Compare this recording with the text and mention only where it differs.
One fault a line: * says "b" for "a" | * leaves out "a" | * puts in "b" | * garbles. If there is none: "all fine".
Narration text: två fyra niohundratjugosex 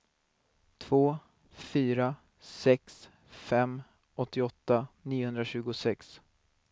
* puts in "sex fem åttioåtta"